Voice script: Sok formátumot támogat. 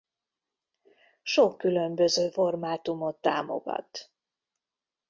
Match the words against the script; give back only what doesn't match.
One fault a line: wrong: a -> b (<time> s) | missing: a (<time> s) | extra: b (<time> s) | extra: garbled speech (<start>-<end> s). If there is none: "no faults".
extra: különböző (1.6 s)